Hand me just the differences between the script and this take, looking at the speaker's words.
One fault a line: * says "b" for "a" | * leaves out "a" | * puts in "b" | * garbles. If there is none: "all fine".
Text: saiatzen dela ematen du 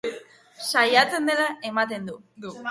all fine